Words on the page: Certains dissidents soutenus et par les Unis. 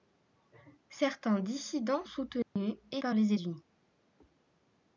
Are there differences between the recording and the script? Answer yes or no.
no